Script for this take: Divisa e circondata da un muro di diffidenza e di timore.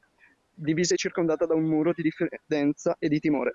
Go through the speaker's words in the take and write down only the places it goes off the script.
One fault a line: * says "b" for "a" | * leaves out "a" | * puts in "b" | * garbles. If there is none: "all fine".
all fine